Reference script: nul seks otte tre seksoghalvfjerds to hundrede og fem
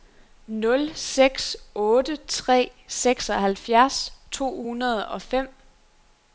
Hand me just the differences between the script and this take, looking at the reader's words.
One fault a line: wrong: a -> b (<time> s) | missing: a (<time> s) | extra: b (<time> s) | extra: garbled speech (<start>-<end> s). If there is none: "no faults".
no faults